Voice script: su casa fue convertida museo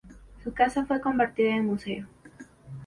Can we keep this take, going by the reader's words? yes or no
no